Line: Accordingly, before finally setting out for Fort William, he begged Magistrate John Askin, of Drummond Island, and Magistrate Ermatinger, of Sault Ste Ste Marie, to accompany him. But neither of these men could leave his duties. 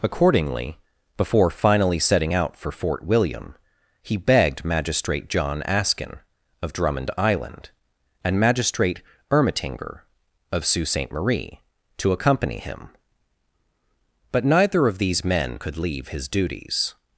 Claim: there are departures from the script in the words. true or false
true